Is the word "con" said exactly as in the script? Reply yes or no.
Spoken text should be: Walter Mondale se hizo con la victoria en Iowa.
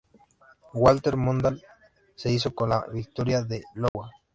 yes